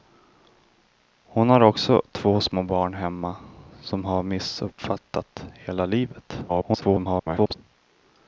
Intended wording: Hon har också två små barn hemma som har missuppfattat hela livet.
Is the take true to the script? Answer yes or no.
no